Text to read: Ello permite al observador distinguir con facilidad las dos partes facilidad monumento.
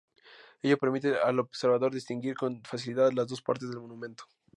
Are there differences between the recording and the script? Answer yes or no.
yes